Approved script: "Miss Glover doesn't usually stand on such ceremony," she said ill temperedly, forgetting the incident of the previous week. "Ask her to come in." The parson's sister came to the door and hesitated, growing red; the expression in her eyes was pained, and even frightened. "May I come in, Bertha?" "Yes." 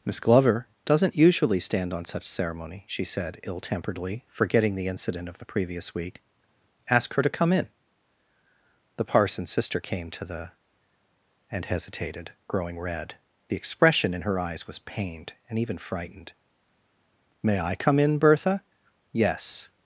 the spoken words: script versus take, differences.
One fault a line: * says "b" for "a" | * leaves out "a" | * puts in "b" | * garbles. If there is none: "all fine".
* leaves out "door"